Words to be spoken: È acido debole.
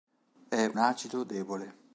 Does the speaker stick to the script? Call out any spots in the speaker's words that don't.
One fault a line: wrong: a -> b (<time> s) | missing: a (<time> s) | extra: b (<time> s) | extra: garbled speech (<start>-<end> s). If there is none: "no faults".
no faults